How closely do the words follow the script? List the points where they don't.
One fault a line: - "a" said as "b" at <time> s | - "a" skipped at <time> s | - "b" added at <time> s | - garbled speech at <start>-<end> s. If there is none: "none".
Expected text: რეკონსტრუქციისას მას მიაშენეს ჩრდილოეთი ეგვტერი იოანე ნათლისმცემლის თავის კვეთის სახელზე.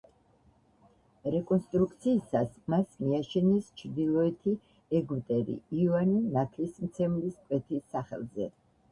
- "თავის" skipped at 7.4 s